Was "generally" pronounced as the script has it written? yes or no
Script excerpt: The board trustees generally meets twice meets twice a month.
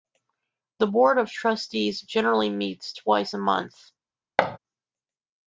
yes